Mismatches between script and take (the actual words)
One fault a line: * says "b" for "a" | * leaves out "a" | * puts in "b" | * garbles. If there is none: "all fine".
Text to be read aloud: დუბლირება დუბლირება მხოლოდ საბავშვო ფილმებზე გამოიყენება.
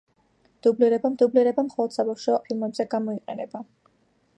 all fine